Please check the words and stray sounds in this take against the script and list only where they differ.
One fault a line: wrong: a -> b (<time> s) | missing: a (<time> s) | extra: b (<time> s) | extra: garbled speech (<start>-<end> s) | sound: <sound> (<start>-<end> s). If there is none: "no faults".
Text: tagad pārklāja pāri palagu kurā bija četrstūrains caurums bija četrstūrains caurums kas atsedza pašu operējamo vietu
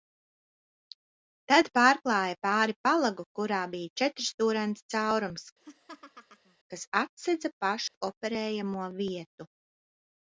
wrong: tagad -> tad (1.5 s)
missing: bija četrstūrains caurums (5.5 s)
sound: laugh (5.6-6.6 s)
sound: dropout (7.9-7.9 s)